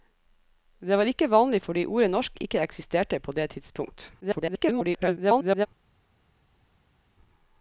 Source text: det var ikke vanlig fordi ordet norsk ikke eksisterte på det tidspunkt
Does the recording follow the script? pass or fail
fail